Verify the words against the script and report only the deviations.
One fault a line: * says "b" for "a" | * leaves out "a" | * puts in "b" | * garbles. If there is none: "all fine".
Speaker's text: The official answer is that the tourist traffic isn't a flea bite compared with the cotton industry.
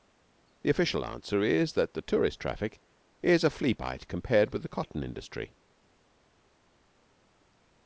* says "is" for "isn't"